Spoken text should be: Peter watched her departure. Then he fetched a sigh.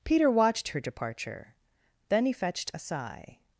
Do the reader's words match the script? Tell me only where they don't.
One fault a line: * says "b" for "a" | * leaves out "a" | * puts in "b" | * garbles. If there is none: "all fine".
all fine